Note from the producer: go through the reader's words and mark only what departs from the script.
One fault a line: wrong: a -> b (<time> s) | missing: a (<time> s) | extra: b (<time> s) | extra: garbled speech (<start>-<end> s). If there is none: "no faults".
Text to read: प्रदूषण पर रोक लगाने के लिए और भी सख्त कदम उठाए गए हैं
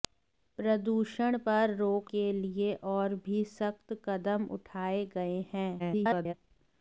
missing: लगाने (2.1 s)
extra: garbled speech (5.8-6.3 s)